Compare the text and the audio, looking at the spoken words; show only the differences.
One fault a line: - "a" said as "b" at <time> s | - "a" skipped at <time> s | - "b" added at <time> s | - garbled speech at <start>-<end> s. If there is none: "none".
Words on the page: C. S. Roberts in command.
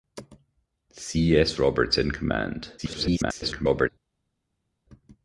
- garbled speech at 2.8-3.9 s